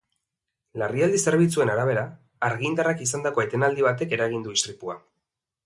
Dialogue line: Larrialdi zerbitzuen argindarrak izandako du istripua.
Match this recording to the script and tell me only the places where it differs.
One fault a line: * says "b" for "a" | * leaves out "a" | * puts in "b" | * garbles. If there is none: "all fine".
* puts in "arabera"
* puts in "etenaldi batek eragin"